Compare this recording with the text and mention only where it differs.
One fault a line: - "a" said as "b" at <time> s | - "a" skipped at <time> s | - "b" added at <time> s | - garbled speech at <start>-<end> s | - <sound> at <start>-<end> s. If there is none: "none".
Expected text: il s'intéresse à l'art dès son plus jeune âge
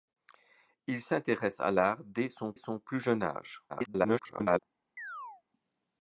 - "son" added at 2.6 s
- garbled speech at 3.7-4.6 s
- chirp at 5.0-5.4 s